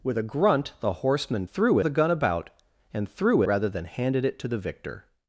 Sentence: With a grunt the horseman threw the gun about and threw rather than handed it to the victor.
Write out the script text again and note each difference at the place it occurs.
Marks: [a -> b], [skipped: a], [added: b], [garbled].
With a grunt the horseman threw the gun about and threw rather than handed it to the victor.